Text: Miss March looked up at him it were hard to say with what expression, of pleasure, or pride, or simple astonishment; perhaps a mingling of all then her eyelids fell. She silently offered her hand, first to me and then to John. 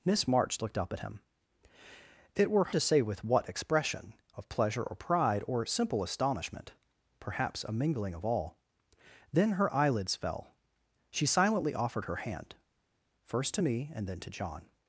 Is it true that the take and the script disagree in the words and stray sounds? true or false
true